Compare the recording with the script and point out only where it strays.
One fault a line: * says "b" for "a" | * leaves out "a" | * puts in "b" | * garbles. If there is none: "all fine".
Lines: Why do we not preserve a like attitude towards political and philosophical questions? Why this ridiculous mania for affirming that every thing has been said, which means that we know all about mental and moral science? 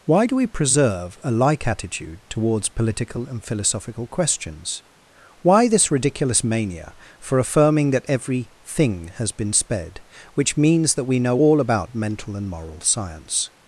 * leaves out "not"
* says "sped" for "said"